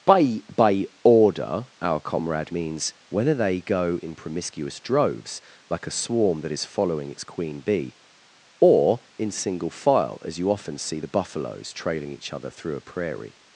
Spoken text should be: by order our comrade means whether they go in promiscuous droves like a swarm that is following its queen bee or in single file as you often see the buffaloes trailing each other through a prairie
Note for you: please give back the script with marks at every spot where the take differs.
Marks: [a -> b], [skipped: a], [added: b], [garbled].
by [added: by] order our comrade means whether they go in promiscuous droves like a swarm that is following its queen bee or in single file as you often see the buffaloes trailing each other through a prairie